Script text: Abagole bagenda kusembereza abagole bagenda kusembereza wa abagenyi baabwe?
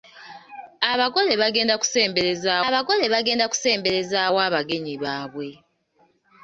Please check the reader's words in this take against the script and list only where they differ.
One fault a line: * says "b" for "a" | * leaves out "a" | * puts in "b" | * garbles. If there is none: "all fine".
all fine